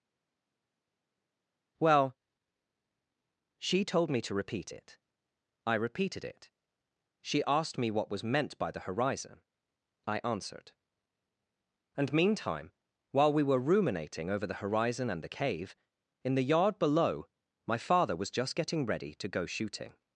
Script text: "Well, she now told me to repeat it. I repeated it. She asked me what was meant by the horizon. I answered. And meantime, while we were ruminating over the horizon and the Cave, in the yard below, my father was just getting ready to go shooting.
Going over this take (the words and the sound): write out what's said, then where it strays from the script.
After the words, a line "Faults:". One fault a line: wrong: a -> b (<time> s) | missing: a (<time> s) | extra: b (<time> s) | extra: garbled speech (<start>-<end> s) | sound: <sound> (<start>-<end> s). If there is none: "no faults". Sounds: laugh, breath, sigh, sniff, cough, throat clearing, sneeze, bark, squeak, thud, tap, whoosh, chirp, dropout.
"Well, she told me to repeat it. I repeated it. She asked me what was meant by the horizon. I answered. And meantime, while we were ruminating over the horizon and the Cave, in the yard below, my father was just getting ready to go shooting.
Faults:
missing: now (3.8 s)